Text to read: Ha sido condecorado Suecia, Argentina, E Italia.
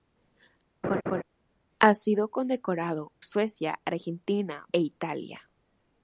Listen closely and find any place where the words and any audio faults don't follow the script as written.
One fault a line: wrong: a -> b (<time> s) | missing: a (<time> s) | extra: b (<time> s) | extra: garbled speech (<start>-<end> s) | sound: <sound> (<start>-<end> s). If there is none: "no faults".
sound: laugh (0.8-1.2 s)